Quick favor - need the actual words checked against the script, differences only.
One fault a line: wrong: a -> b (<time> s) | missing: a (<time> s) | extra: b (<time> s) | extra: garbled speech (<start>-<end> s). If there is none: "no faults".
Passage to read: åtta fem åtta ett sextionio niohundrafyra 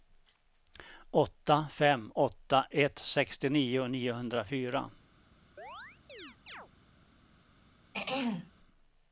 no faults